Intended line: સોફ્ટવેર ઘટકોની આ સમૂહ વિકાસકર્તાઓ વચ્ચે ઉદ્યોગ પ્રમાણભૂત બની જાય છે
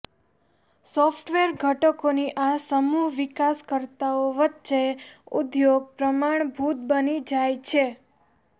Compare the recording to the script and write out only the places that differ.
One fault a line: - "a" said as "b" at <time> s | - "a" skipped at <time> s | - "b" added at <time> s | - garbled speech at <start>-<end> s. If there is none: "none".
none